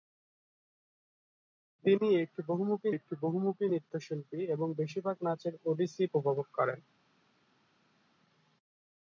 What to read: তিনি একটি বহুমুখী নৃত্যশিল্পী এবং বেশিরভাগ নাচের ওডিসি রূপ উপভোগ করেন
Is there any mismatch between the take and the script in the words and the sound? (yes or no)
yes